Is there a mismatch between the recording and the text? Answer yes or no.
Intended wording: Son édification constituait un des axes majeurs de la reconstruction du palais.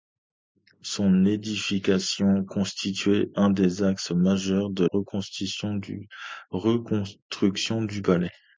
yes